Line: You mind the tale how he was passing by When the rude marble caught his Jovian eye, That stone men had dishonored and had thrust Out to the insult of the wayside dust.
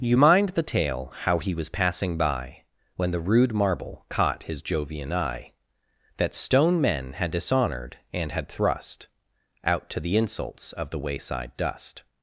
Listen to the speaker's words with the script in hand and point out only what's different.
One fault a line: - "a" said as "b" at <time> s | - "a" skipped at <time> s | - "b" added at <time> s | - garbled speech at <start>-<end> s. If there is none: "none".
- "insult" said as "insults" at 10.1 s